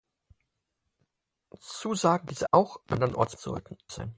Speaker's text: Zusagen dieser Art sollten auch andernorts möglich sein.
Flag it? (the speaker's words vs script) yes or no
yes